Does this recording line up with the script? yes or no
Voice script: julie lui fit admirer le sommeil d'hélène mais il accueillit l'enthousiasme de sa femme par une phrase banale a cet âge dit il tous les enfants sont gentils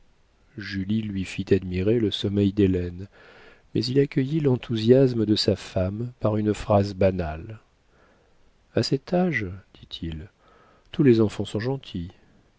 yes